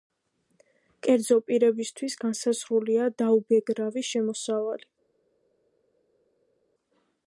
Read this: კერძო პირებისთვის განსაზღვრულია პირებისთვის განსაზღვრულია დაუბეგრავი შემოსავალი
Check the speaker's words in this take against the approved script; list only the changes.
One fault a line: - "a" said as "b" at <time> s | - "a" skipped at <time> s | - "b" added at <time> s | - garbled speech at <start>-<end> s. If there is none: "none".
- "პირებისთვის განსაზღვრულია" skipped at 3.1 s